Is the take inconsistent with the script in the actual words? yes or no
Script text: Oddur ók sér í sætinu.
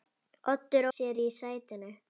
yes